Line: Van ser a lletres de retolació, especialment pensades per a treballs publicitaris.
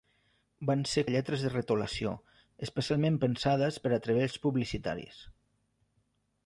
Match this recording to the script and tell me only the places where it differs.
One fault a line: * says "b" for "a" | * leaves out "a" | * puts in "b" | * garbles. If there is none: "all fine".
all fine